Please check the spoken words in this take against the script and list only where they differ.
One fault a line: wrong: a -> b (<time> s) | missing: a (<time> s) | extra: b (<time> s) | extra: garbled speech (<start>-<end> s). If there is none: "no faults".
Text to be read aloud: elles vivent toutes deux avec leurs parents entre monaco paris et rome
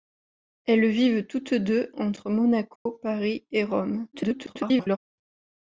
missing: avec leurs parents (1.9 s)
extra: garbled speech (4.1-5.0 s)